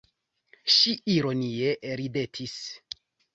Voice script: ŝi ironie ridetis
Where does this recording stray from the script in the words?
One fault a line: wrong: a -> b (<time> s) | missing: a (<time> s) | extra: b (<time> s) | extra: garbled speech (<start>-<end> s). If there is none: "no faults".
no faults